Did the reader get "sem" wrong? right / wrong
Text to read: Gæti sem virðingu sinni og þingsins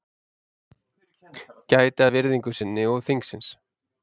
wrong